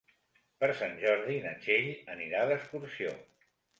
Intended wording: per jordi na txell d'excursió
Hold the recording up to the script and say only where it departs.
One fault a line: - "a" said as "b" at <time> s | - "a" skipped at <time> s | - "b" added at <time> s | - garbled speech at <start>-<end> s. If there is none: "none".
- "sant" added at 0.8 s
- "anirà" added at 2.1 s